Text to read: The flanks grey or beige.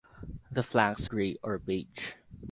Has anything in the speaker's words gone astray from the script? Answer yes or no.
no